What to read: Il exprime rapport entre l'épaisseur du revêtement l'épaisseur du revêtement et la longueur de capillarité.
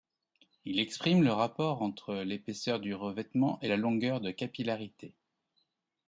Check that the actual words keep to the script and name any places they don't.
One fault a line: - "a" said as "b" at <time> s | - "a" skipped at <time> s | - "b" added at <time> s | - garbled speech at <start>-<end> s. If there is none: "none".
- "le" added at 1.2 s
- "l'épaisseur du revêtement" skipped at 3.6 s